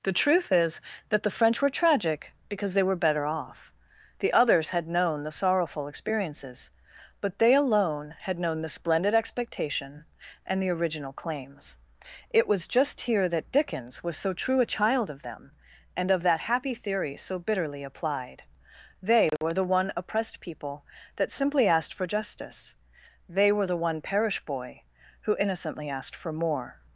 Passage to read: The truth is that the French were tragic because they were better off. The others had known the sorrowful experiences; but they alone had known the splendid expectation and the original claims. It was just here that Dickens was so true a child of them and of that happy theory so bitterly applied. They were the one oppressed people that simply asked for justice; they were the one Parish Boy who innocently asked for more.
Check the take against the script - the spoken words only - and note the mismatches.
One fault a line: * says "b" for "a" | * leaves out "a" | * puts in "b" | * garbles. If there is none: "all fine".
all fine